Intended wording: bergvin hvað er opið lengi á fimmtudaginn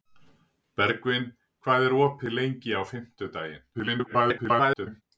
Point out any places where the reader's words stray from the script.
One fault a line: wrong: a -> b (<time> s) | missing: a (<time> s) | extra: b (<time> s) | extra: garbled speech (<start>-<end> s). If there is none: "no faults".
extra: garbled speech (3.7-5.0 s)